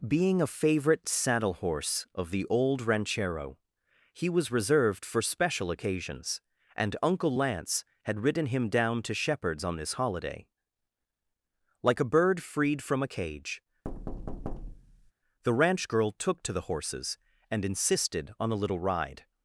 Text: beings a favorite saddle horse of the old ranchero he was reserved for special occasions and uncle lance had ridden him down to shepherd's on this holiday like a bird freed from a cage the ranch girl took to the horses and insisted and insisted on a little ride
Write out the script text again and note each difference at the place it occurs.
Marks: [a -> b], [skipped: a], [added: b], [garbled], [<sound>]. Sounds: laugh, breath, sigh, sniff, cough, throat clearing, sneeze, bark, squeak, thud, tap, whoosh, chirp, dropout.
[beings -> being] a favorite saddle horse of the old ranchero he was reserved for special occasions and uncle lance had ridden him down to shepherd's on this holiday like a bird freed from a cage [thud] the ranch girl took to the horses and insisted [skipped: and insisted] on a little ride